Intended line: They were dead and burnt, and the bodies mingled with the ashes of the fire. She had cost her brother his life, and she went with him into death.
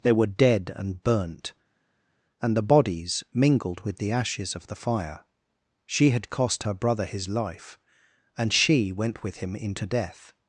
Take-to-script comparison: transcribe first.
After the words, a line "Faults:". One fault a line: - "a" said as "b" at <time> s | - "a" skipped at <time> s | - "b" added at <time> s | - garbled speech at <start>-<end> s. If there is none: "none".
They were dead and burnt, and the bodies mingled with the ashes of the fire. She had cost her brother his life, and she went with him into death.
Faults:
none